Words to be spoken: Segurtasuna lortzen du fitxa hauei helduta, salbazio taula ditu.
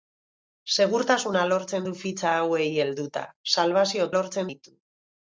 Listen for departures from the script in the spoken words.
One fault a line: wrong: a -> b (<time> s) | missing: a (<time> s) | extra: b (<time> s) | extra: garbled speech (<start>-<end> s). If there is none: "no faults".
wrong: taula -> lortzen (4.1 s)